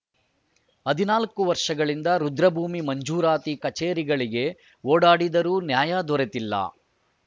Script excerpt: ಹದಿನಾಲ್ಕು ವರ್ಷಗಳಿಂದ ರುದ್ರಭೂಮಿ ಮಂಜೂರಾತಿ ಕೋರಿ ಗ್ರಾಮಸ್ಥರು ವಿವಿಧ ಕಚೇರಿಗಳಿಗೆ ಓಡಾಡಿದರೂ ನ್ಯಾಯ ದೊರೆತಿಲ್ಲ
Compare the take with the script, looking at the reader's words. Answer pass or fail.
fail